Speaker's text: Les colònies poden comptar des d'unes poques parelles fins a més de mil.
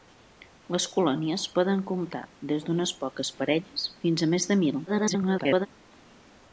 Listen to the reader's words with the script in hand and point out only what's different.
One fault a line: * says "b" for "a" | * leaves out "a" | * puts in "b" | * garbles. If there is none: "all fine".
* garbles